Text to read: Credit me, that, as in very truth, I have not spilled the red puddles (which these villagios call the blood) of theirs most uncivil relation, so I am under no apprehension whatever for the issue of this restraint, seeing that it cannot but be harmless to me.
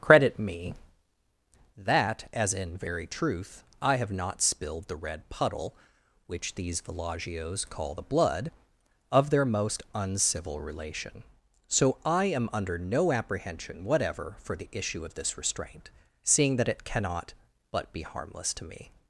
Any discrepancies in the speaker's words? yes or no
yes